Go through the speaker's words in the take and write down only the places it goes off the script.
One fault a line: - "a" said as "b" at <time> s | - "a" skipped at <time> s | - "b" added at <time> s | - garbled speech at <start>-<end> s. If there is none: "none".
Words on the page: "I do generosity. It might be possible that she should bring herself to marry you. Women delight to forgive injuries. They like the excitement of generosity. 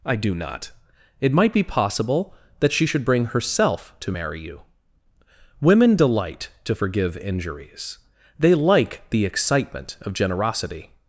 - "generosity" said as "not" at 0.3 s